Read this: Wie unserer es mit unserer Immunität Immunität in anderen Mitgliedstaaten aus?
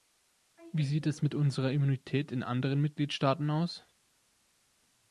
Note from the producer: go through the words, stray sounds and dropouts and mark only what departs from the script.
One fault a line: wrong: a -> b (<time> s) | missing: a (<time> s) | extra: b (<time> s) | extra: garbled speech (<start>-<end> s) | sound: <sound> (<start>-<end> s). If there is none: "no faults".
wrong: unserer -> sieht (0.8 s)
missing: Immunität (2.3 s)